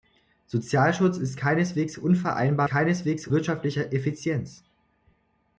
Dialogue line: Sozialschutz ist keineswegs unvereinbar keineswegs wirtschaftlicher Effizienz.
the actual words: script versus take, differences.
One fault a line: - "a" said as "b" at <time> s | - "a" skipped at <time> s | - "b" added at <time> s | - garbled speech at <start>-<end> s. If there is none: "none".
none